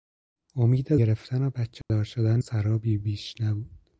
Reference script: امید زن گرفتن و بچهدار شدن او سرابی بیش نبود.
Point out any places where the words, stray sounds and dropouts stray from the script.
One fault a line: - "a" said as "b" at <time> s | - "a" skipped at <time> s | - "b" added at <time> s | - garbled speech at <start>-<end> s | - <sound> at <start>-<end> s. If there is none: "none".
- "زن" skipped at 0.9 s
- dropout at 1.8-1.9 s
- "او" skipped at 2.4 s